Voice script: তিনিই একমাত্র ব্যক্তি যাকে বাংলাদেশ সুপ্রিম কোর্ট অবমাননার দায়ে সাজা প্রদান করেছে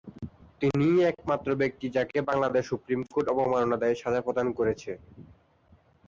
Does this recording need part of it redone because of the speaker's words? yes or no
no